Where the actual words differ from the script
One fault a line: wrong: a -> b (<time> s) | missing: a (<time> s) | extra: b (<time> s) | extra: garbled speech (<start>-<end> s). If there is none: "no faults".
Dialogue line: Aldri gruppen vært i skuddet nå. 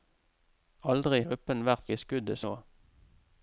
no faults